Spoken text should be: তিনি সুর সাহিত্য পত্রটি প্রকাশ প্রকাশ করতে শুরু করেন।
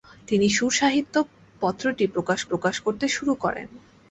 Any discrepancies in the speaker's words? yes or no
no